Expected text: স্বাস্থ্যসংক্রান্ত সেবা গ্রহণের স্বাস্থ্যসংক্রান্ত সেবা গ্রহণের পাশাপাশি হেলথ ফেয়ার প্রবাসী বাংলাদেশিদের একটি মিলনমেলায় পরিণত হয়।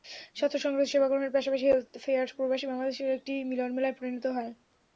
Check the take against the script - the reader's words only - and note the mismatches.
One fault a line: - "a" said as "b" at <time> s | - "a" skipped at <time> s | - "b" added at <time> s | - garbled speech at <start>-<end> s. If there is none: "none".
- "স্বাস্থ্যসংক্রান্ত সেবা গ্রহণের" skipped at 1.4 s